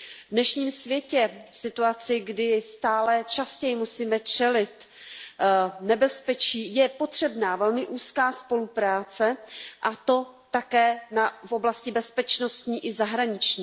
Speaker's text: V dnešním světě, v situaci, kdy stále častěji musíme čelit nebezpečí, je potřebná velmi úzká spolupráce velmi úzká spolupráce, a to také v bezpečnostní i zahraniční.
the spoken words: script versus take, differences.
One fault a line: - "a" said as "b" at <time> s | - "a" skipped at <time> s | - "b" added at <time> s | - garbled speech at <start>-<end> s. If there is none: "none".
- "velmi úzká spolupráce" skipped at 9.4 s
- "oblasti" added at 11.5 s